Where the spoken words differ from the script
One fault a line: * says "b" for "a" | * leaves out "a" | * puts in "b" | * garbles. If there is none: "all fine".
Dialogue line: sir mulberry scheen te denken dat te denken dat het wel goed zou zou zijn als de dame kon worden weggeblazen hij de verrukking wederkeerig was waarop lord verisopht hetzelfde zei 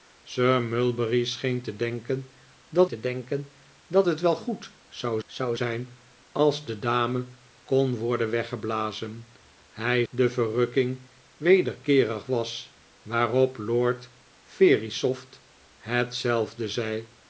all fine